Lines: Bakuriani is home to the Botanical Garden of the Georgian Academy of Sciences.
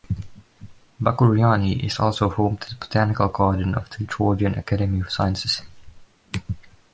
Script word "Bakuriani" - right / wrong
right